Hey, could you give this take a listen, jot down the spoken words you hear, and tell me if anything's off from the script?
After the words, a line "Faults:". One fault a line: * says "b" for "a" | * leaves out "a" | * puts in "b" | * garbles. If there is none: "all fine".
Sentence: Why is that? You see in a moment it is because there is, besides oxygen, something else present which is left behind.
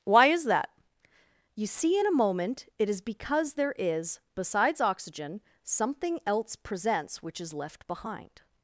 Why is that? You see in a moment it is because there is, besides oxygen, something else presents which is left behind.
Faults:
* says "presents" for "present"